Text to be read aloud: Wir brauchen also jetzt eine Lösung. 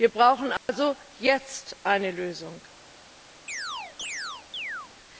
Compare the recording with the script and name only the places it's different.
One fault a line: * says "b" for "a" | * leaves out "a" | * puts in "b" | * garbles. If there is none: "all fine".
all fine